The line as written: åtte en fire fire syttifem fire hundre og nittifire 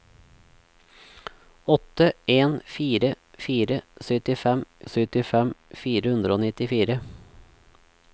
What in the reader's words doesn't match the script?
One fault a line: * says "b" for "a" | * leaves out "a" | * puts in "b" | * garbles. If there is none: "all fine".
* puts in "syttifem"